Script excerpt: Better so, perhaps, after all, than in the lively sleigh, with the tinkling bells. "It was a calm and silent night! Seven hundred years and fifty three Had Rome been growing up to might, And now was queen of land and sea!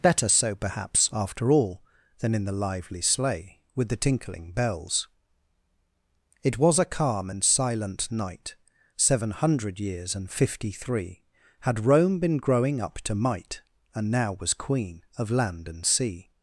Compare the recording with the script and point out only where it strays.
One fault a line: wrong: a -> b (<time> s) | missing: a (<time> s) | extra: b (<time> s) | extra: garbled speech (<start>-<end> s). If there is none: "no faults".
no faults